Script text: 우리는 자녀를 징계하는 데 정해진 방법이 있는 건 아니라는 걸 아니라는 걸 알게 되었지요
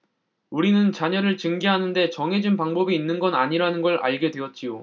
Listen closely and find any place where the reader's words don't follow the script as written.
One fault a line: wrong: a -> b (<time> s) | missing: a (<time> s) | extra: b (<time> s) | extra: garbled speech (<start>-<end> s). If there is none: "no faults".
missing: 아니라는 걸 (4.0 s)